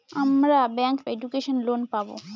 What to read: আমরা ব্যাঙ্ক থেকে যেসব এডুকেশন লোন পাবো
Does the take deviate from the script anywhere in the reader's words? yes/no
yes